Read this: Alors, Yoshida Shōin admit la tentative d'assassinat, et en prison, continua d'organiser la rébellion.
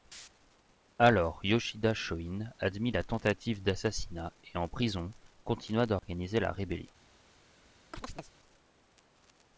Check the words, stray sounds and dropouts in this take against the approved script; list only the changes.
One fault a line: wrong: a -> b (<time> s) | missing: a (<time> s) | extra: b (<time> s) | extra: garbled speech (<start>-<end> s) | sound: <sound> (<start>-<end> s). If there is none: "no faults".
sound: dropout (6.0-6.0 s)
sound: chirp (7.9-8.3 s)